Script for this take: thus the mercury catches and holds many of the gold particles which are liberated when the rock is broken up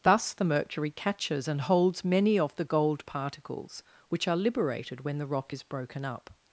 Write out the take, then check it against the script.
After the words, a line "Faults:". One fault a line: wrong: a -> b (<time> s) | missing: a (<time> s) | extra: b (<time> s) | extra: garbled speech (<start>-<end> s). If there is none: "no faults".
thus the mercury catches and holds many of the gold particles which are liberated when the rock is broken up
Faults:
no faults